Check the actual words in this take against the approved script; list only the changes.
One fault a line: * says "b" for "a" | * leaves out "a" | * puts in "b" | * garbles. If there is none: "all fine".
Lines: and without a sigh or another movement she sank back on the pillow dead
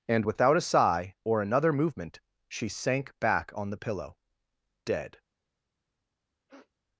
all fine